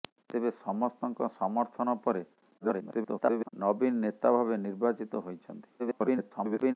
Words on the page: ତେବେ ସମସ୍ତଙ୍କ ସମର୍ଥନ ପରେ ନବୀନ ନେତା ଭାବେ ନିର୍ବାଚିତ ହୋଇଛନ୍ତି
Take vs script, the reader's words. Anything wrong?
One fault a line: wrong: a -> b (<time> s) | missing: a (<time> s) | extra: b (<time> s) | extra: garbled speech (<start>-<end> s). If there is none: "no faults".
extra: garbled speech (2.6-3.5 s)
extra: garbled speech (5.8-6.7 s)